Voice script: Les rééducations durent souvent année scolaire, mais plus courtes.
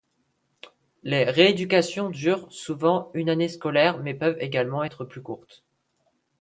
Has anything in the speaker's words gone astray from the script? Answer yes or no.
yes